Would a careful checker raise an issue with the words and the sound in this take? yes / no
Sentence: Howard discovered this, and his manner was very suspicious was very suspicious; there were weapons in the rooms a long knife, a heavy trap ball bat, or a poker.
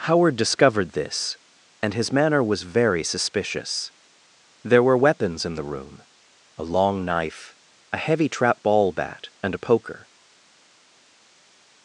yes